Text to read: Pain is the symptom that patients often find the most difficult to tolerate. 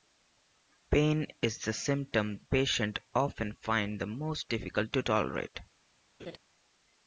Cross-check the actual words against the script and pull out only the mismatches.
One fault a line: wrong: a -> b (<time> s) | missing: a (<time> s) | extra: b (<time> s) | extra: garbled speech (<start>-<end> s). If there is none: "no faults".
missing: that (2.4 s)